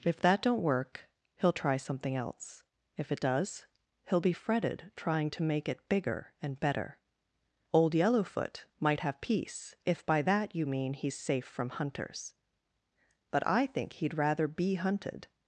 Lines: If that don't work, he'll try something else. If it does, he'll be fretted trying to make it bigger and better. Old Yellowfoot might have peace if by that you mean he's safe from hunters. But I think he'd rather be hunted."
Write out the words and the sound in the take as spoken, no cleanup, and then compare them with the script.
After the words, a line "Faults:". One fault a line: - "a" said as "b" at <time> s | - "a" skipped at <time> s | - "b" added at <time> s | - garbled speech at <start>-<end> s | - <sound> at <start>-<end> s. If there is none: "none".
If that don't work, he'll try something else. If it does, he'll be fretted trying to make it bigger and better. Old Yellowfoot might have peace if by that you mean he's safe from hunters. But I think he'd rather be hunted."
Faults:
none